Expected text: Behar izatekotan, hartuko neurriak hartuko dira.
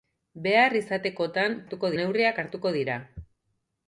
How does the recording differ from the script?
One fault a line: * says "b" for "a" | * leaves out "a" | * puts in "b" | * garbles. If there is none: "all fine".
all fine